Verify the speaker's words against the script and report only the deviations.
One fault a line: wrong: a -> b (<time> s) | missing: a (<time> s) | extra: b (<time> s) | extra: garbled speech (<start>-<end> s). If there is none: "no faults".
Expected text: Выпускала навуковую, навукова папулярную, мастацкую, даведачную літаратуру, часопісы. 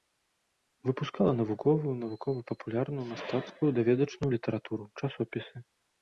no faults